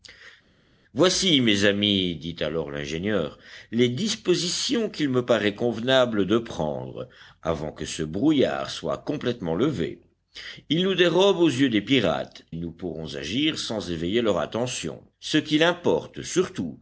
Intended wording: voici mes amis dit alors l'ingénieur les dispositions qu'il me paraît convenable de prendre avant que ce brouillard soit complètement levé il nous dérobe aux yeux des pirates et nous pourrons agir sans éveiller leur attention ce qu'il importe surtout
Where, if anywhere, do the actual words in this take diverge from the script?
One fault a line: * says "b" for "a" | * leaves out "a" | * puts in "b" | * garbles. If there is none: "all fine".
* leaves out "et"